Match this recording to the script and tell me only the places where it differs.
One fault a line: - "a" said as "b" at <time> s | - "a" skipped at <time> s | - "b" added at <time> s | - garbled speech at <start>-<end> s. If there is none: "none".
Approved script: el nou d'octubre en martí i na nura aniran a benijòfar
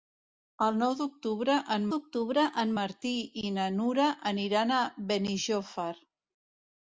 - "d'octubre en" added at 1.9 s